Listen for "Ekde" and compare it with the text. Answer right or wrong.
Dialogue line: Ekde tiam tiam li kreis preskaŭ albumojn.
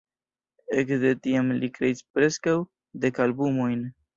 right